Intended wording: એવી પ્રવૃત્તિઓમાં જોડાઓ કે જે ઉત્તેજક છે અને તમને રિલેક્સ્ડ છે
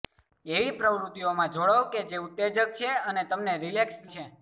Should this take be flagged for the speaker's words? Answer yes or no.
no